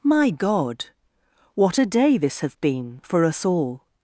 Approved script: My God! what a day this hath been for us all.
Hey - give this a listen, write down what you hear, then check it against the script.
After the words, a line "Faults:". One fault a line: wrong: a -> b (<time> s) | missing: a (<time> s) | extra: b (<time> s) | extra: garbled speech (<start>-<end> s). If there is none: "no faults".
My God! what a day this hath been for us all.
Faults:
no faults